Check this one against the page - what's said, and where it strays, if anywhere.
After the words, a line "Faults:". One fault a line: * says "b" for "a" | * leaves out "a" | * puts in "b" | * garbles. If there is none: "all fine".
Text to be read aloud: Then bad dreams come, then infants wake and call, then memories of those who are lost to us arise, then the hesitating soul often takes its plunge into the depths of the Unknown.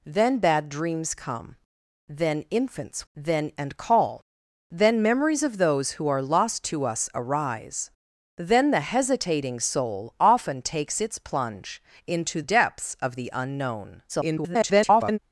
Then bad dreams come, then infants then and call, then memories of those who are lost to us arise, then the hesitating soul often takes its plunge into depths of the Unknown. [garbled]
Faults:
* says "then" for "wake"
* leaves out "the"
* garbles